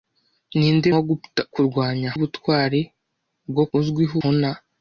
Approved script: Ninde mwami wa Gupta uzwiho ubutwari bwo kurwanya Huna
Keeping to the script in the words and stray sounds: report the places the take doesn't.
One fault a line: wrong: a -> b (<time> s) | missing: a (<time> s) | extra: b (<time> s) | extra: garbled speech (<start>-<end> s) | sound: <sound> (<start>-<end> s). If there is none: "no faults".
missing: mwami (0.9 s)
wrong: uzwiho -> kurwanya (1.5 s)
wrong: kurwanya -> uzwiho (3.8 s)